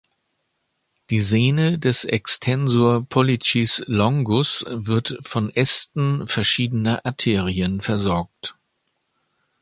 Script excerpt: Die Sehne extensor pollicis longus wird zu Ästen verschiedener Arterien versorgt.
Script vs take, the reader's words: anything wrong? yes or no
yes